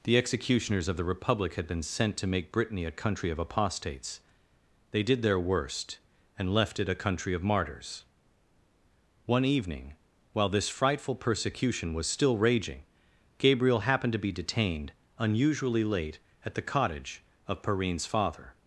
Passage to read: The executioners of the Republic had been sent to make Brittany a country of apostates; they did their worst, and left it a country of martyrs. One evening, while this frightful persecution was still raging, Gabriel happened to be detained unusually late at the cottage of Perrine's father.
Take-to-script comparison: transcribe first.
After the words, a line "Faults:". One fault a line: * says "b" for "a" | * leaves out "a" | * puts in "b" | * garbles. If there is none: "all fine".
The executioners of the Republic had been sent to make Brittany a country of apostates; they did their worst, and left it a country of martyrs. One evening, while this frightful persecution was still raging, Gabriel happened to be detained unusually late at the cottage of Perrine's father.
Faults:
all fine